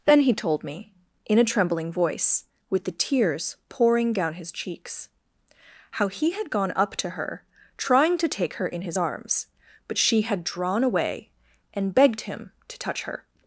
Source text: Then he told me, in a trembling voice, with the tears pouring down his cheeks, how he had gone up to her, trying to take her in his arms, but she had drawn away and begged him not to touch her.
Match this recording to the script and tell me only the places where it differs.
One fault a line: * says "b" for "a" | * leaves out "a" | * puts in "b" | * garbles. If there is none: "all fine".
* leaves out "not"